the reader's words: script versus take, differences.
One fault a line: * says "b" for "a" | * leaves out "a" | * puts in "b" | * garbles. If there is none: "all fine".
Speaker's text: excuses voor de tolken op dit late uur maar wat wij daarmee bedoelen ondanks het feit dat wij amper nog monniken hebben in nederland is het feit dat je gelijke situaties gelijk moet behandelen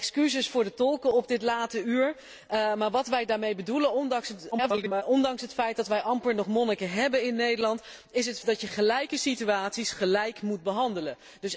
* garbles
* leaves out "feit"